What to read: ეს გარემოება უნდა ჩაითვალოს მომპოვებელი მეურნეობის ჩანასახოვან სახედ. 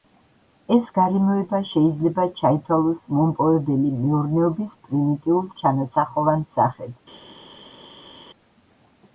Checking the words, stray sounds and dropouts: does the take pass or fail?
fail